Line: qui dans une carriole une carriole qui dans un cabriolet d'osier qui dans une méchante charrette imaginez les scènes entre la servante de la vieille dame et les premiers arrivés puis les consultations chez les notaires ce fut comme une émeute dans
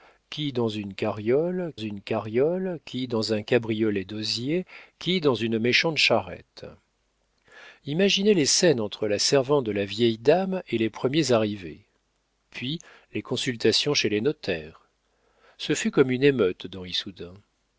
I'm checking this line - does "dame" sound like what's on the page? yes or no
yes